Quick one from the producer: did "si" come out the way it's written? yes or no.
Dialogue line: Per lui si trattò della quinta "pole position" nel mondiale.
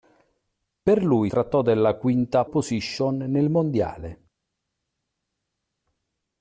no